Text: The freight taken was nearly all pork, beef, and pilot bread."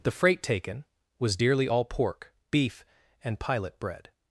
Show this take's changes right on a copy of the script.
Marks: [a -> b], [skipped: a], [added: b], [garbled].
The freight taken was [nearly -> dearly] all pork, beef, and pilot bread."